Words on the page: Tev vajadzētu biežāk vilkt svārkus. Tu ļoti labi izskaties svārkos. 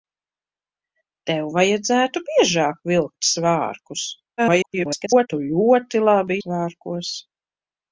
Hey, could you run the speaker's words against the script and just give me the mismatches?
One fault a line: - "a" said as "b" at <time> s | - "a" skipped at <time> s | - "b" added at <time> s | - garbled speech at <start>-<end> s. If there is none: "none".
- garbled speech at 4.4-5.3 s
- "izskaties" skipped at 6.4 s